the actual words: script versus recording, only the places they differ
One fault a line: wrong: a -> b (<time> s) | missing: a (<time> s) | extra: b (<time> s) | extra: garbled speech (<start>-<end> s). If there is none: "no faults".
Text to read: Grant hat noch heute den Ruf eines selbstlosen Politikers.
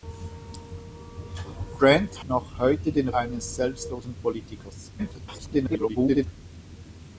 missing: hat (2.2 s)
missing: Ruf (3.1 s)
extra: garbled speech (5.0-6.3 s)